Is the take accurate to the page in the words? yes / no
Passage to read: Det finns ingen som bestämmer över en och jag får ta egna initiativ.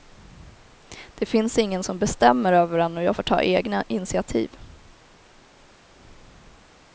yes